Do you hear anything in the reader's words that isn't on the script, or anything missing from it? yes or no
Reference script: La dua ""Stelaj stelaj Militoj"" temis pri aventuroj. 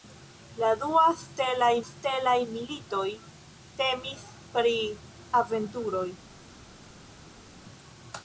no